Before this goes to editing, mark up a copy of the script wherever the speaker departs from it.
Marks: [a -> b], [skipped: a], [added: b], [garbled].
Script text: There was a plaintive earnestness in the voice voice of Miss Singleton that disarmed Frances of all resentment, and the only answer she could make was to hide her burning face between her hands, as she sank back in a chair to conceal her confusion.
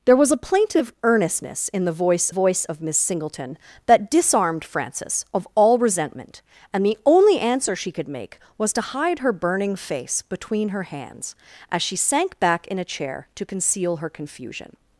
There was a plaintive earnestness in the voice voice of Miss Singleton that disarmed Frances of all resentment, and the only answer she could make was to hide her burning face between her hands, as she sank back in a chair to conceal her confusion.